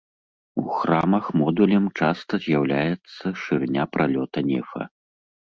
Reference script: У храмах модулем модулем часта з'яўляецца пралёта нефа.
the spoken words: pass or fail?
fail